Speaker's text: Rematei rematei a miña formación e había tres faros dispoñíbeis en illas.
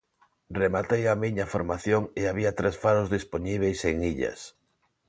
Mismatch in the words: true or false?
true